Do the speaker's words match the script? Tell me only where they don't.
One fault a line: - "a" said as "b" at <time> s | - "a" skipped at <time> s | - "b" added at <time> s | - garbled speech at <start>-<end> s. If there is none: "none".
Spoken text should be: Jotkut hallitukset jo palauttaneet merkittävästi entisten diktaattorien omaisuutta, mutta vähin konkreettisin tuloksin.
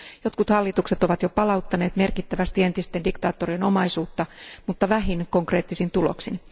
- "ovat" added at 1.0 s